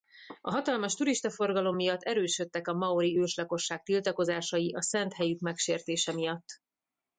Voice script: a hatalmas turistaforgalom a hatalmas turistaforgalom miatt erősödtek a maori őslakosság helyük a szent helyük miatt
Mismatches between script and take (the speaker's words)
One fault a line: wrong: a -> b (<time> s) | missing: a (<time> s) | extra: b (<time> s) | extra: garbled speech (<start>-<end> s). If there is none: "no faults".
missing: a hatalmas turistaforgalom (1.8 s)
wrong: helyük -> tiltakozásai (3.8 s)
extra: megsértése (5.4 s)